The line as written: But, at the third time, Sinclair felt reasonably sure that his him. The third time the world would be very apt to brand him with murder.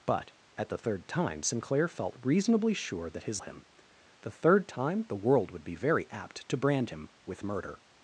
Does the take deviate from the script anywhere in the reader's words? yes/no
no